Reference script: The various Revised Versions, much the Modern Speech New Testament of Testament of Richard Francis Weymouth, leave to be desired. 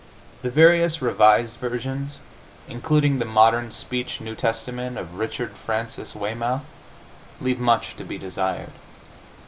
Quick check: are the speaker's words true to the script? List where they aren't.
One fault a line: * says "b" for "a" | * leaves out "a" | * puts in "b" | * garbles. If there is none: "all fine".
* says "including" for "much"
* leaves out "Testament of"
* puts in "much"